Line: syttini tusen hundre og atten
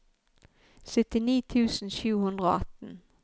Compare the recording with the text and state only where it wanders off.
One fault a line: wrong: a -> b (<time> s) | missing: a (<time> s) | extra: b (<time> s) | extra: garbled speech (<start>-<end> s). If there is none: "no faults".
extra: sju (2.0 s)